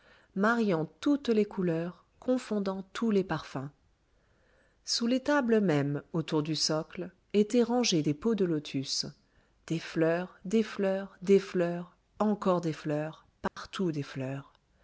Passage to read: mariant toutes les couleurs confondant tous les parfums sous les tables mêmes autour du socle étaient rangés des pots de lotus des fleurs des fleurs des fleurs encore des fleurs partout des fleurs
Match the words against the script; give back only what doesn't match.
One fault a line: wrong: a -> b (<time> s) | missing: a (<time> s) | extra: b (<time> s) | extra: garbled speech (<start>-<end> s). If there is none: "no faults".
no faults